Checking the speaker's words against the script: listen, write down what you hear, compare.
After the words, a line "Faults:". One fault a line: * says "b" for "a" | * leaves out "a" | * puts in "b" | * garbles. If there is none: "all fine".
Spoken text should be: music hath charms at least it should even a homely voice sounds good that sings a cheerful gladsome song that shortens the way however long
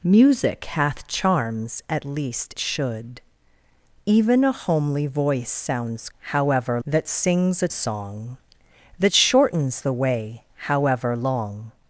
music hath charms at least should even a homely voice sounds however that sings a song that shortens the way however long
Faults:
* leaves out "it"
* says "however" for "good"
* leaves out "cheerful gladsome"